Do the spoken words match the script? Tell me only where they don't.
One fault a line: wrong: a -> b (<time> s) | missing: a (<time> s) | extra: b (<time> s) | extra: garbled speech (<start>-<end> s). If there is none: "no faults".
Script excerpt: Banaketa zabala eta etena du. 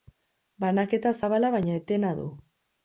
wrong: eta -> baina (1.6 s)